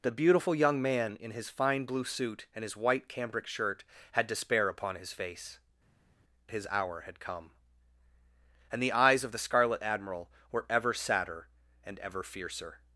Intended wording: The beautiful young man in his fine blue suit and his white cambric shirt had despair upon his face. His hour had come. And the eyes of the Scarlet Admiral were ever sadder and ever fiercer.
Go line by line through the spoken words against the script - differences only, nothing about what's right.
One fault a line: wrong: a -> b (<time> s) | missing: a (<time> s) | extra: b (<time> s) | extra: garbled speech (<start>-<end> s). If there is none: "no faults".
no faults